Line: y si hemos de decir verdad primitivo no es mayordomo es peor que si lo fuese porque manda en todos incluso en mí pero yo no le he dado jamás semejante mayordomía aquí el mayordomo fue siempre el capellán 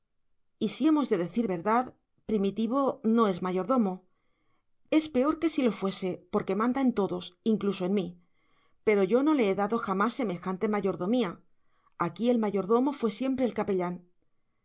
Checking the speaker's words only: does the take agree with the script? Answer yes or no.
yes